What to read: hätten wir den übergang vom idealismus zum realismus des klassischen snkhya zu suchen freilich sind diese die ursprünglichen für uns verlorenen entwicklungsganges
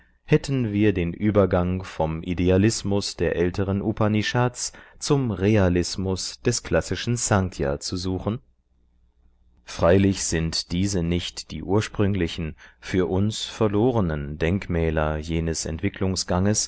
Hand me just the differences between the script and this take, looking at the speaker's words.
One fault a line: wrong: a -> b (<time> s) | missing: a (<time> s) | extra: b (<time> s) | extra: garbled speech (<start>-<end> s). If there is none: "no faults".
extra: der älteren upanishads (3.2 s)
extra: nicht (11.0 s)
extra: denkmäler jenes (14.4 s)